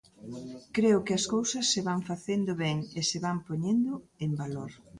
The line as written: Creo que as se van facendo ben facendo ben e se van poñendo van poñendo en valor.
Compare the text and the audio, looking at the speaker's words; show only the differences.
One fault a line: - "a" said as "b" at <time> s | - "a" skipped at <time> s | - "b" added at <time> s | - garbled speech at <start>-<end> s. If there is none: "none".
- "cousas" added at 1.3 s
- "facendo ben" skipped at 2.8 s
- "van poñendo" skipped at 3.9 s